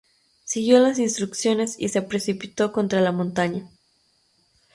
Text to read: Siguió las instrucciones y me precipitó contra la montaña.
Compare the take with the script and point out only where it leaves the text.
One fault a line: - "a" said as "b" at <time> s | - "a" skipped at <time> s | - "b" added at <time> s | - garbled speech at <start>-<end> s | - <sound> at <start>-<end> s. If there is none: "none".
- "me" said as "se" at 1.9 s